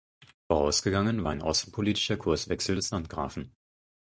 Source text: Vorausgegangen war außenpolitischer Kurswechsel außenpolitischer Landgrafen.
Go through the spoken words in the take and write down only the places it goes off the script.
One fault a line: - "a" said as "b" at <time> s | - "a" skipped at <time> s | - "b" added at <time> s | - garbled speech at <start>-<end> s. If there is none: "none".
- "ein" added at 1.3 s
- "außenpolitischer" said as "des" at 2.7 s